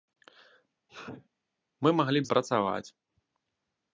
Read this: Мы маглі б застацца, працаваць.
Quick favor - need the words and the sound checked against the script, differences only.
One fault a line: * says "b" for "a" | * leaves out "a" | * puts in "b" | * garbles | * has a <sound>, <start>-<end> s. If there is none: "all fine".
* has a sneeze, 0.9-1.3 s
* leaves out "застацца"